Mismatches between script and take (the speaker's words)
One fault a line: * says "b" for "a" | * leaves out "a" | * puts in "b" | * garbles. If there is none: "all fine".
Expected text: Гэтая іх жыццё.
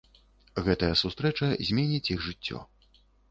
* puts in "сустрэча зменіць"